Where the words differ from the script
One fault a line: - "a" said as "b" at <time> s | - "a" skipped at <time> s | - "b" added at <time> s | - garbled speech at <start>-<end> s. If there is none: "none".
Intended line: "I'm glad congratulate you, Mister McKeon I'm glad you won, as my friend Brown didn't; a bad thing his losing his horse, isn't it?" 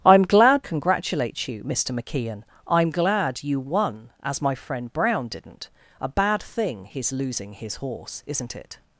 none